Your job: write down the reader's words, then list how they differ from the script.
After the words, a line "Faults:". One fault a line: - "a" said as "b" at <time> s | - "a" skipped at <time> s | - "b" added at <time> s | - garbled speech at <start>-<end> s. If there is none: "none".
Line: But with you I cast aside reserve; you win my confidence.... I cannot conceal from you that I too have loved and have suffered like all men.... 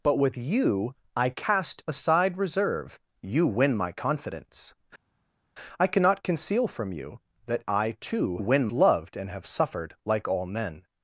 But with you I cast aside reserve; you win my confidence.... I cannot conceal from you that I too win loved and have suffered like all men....
Faults:
- "have" said as "win" at 8.4 s